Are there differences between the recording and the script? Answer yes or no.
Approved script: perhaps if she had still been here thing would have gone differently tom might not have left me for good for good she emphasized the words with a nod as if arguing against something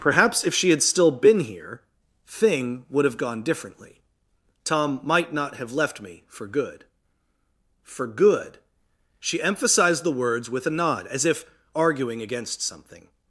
no